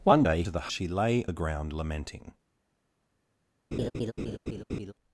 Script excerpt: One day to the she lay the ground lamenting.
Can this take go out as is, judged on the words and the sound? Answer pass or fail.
fail